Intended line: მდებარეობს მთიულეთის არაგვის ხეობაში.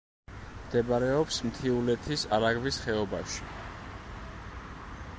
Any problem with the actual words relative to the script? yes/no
no